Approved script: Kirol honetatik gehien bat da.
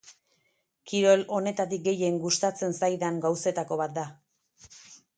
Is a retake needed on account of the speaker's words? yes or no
yes